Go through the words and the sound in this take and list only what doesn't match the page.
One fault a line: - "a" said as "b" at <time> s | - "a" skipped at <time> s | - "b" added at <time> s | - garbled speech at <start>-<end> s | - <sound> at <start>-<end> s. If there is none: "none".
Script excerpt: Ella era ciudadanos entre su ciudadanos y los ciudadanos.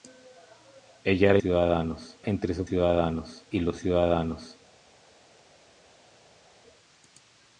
none